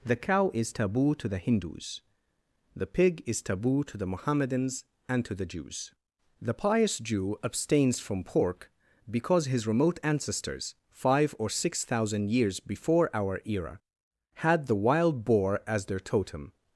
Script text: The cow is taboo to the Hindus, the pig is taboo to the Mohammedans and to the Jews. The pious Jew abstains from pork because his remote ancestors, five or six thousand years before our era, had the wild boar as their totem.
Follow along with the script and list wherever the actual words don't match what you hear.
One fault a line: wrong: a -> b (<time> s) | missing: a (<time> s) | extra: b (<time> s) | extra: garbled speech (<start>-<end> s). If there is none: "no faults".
no faults